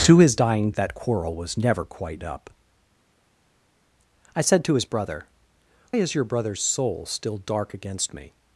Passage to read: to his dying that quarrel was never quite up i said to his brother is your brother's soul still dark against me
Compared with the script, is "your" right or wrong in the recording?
right